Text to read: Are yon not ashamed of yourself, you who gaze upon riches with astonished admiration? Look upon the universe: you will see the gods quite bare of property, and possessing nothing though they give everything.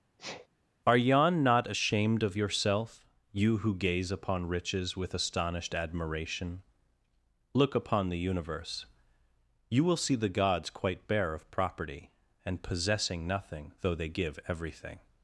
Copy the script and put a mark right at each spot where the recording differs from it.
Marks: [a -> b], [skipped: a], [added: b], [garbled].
Are yon not ashamed of yourself, you who gaze upon riches with astonished admiration? Look upon the universe: you will see the gods quite bare of property, and possessing nothing though they give everything.